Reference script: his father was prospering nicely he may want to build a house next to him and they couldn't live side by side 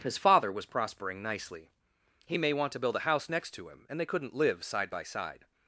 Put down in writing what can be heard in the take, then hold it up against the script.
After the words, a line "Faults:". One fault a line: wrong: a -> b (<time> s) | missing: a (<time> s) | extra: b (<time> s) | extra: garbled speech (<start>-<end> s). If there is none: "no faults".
his father was prospering nicely he may want to build a house next to him and they couldn't live side by side
Faults:
no faults